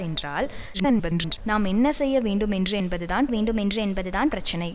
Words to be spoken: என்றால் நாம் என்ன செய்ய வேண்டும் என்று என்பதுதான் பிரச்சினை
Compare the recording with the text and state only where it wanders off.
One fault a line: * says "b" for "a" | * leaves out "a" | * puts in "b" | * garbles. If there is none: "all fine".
* garbles
* puts in "வேண்டும் என்று என்பதுதான்"